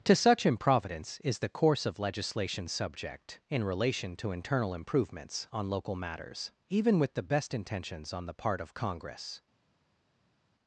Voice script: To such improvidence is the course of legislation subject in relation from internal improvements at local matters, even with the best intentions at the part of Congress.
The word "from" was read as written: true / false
false